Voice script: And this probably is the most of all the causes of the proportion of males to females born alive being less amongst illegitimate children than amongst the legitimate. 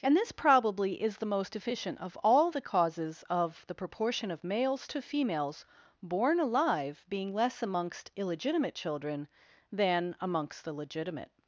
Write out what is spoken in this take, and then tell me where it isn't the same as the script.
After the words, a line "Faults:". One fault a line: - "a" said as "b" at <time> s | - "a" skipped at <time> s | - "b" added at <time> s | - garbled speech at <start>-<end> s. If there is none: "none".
And this probably is the most efficient of all the causes of the proportion of males to females born alive being less amongst illegitimate children than amongst the legitimate.
Faults:
- "efficient" added at 1.6 s